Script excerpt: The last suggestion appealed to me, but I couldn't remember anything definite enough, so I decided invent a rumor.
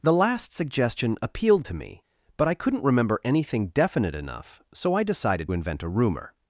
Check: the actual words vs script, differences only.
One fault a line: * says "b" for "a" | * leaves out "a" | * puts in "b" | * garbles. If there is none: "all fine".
all fine